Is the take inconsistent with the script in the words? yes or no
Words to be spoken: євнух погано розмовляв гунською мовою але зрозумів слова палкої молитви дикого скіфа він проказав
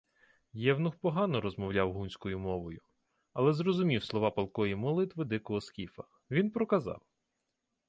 no